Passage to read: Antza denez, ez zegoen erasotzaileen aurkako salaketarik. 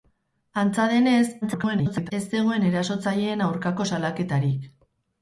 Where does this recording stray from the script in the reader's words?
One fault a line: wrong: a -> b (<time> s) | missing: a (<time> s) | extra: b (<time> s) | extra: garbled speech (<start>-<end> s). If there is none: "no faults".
extra: garbled speech (1.4-2.1 s)